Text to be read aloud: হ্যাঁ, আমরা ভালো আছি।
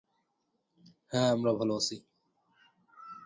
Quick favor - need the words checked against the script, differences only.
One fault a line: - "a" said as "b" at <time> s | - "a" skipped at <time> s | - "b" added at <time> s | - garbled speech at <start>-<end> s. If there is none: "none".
none